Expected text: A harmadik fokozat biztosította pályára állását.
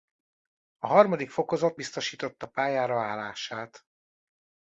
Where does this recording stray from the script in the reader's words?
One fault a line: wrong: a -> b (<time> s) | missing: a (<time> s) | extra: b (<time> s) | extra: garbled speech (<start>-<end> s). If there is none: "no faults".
no faults